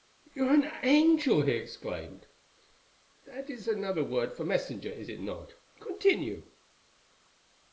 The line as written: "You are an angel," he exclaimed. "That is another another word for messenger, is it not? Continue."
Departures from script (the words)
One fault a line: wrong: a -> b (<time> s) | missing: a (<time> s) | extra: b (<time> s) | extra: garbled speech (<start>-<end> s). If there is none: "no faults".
missing: another (4.0 s)